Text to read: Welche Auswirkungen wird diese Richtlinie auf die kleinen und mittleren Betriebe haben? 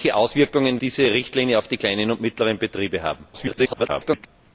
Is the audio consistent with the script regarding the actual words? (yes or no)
no